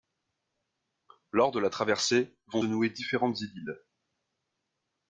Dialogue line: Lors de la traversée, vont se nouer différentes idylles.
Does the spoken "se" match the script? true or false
false